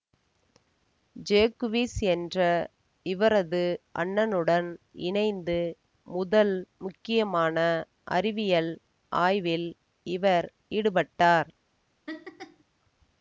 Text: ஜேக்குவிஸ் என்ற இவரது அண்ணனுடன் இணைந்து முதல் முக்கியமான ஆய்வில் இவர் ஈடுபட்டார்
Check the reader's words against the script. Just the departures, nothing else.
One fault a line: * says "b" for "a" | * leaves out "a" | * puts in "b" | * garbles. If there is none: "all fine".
* puts in "அறிவியல்"